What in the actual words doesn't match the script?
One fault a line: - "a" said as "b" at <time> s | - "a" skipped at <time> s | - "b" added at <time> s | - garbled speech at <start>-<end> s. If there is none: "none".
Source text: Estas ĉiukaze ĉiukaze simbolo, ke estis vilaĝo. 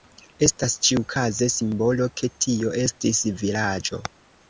- "ĉiukaze" skipped at 1.5 s
- "tio" added at 2.5 s